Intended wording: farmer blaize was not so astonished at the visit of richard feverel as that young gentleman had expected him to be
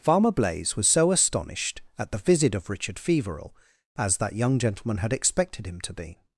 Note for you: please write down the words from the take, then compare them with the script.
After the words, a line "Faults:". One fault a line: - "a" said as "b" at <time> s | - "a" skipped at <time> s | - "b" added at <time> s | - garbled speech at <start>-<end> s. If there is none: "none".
farmer blaize was so astonished at the visit of richard feverel as that young gentleman had expected him to be
Faults:
- "not" skipped at 0.9 s